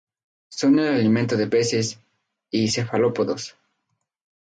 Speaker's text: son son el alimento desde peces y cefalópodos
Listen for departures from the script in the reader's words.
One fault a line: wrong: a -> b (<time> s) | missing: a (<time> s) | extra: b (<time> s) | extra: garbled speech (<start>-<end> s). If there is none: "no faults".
missing: son (0.8 s)
wrong: desde -> de (1.4 s)